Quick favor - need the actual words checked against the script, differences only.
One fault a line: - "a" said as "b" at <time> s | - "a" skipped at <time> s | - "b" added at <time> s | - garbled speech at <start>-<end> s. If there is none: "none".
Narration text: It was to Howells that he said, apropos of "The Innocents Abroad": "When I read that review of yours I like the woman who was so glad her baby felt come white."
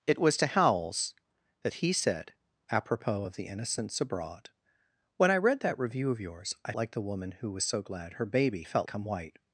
none